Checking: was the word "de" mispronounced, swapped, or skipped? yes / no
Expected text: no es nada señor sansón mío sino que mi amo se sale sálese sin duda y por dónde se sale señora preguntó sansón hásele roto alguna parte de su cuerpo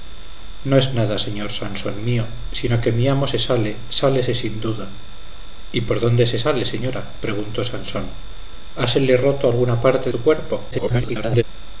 yes